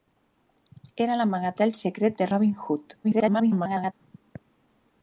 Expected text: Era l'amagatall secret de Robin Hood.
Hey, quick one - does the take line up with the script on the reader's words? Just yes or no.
no